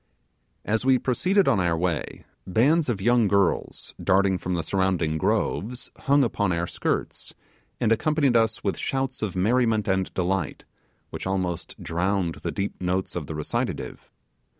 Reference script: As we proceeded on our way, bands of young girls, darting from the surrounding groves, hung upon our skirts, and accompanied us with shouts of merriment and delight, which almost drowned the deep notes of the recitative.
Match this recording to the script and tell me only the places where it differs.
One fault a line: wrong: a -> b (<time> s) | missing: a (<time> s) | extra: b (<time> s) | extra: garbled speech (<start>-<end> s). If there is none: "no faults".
no faults